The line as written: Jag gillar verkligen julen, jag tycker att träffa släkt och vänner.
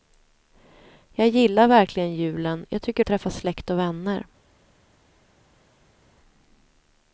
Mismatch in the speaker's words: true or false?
false